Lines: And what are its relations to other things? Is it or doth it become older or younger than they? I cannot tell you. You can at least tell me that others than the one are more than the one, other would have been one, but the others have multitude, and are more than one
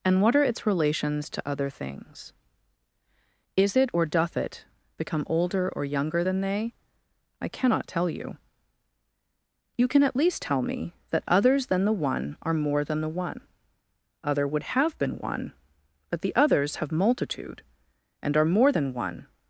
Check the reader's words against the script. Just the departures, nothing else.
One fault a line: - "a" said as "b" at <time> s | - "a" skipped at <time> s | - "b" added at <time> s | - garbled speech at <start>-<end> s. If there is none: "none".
none